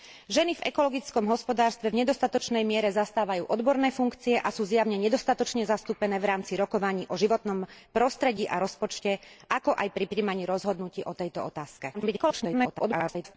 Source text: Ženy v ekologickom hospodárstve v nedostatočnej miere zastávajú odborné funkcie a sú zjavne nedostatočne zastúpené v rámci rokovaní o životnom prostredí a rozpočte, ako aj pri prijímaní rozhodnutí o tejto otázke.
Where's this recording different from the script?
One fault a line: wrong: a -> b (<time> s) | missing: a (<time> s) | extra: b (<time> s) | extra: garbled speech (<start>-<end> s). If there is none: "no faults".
extra: garbled speech (11.9-13.4 s)